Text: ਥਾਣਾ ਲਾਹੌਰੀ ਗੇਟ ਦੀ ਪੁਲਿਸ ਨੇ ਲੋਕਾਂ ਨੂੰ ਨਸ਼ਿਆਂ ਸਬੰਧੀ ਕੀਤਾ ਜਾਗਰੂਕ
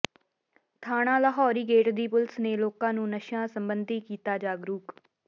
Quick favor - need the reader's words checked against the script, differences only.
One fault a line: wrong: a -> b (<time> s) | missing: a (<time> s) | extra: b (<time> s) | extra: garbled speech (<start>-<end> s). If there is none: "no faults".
no faults